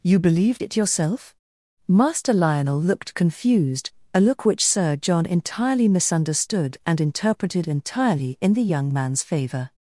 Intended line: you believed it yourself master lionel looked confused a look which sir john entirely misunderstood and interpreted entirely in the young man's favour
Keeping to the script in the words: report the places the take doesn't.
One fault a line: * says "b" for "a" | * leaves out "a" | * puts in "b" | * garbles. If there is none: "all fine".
all fine